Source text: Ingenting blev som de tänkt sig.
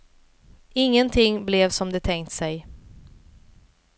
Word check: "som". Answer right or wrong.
right